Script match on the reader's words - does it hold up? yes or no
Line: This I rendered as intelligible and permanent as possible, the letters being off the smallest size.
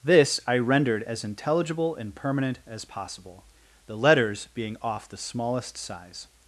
yes